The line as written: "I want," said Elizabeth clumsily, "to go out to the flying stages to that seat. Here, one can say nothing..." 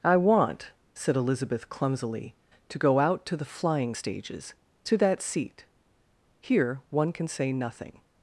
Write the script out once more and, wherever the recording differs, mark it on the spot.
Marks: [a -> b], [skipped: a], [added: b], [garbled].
"I want," said Elizabeth clumsily, "to go out to the flying stages to that seat. Here, one can say nothing..."